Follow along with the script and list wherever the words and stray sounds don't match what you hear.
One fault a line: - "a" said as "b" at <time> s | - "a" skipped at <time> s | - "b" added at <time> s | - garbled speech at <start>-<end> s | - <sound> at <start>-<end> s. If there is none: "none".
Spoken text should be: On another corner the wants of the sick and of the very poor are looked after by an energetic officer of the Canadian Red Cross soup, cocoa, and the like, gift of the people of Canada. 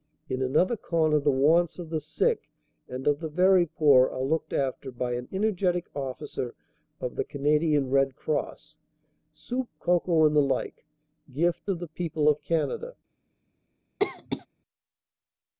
- "On" said as "In" at 0.3 s
- cough at 14.0-14.5 s